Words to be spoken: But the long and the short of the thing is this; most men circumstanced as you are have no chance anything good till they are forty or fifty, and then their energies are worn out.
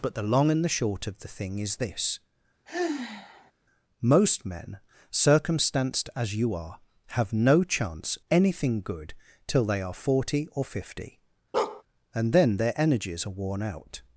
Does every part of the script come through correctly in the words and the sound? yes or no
no